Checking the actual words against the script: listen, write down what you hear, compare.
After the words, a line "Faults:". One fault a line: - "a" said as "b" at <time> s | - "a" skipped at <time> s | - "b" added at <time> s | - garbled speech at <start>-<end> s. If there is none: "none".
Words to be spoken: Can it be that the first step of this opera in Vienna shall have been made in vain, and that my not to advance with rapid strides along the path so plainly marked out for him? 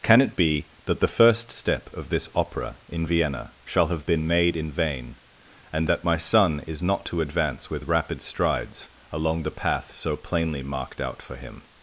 Can it be that the first step of this opera in Vienna shall have been made in vain, and that my son is not to advance with rapid strides along the path so plainly marked out for him?
Faults:
- "son is" added at 6.1 s